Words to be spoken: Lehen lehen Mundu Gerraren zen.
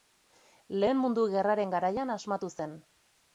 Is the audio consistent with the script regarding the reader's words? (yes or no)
no